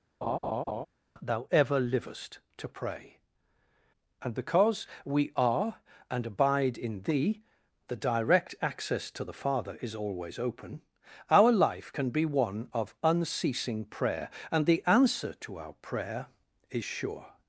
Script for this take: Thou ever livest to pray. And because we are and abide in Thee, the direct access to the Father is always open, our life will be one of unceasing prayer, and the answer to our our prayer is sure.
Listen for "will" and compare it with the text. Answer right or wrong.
wrong